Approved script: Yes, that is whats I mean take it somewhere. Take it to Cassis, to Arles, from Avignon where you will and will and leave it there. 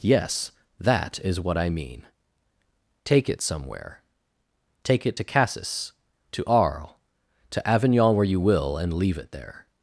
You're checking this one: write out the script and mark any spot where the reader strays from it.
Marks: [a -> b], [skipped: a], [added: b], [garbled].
Yes, that is [whats -> what] I mean take it somewhere. Take it to Cassis, to Arles, [from -> to] Avignon where you will and [skipped: will and] leave it there.